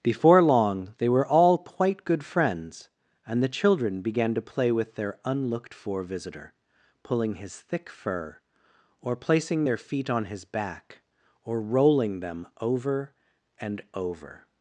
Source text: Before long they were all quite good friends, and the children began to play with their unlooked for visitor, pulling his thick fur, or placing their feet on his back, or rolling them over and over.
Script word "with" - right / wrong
right